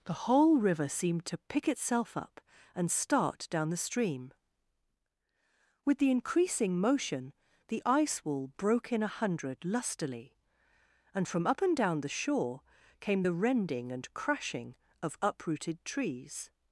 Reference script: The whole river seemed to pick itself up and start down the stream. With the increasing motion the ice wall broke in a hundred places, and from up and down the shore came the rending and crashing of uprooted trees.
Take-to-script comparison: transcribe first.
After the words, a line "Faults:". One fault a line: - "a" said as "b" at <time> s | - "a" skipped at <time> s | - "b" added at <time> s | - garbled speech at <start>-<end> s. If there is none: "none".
The whole river seemed to pick itself up and start down the stream. With the increasing motion the ice wall broke in a hundred lustily, and from up and down the shore came the rending and crashing of uprooted trees.
Faults:
- "places" said as "lustily" at 9.6 s